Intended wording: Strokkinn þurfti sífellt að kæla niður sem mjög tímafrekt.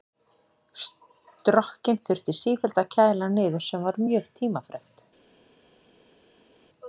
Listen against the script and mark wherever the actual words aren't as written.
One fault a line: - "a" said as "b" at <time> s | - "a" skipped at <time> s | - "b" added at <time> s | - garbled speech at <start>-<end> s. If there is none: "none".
- "var" added at 3.9 s